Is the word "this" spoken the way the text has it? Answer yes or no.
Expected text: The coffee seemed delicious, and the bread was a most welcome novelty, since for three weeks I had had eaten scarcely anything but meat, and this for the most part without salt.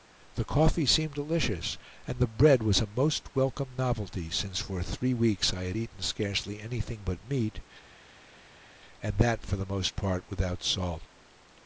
no